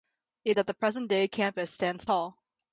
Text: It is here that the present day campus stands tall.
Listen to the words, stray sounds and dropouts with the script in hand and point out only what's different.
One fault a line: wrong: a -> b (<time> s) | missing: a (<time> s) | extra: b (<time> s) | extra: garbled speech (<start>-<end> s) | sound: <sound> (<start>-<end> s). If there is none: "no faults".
missing: is here (0.6 s)